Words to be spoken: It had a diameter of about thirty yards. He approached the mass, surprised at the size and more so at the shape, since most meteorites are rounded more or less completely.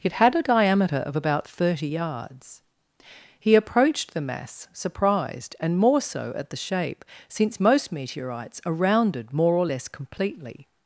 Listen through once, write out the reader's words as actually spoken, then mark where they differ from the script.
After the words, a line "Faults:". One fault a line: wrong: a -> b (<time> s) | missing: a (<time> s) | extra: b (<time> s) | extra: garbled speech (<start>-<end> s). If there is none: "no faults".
It had a diameter of about thirty yards. He approached the mass, surprised and more so at the shape, since most meteorites are rounded more or less completely.
Faults:
missing: at the size (5.6 s)